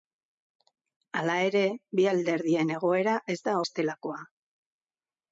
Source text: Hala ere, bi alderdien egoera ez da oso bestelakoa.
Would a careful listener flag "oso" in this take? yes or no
yes